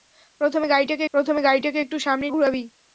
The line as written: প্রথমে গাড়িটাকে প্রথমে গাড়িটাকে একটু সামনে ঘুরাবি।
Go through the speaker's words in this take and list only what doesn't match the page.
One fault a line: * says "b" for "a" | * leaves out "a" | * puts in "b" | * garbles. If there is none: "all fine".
all fine